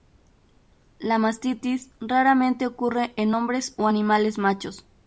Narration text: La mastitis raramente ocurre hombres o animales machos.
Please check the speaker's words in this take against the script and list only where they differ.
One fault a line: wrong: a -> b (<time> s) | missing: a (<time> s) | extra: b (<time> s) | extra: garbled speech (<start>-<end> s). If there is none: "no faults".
extra: en (3.2 s)